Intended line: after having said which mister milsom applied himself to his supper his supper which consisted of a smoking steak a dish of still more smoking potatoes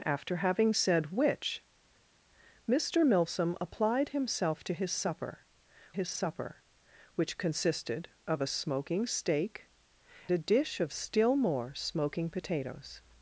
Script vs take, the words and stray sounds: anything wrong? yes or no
no